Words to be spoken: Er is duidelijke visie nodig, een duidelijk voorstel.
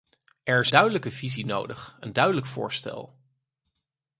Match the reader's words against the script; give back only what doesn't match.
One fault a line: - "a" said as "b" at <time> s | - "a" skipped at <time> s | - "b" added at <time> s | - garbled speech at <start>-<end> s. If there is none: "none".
none